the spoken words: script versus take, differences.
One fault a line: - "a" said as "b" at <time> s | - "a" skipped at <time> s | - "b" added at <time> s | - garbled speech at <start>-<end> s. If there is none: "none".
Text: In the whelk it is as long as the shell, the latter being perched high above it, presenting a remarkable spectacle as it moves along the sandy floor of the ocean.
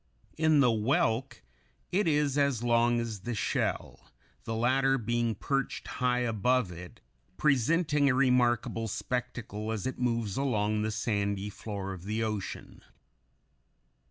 none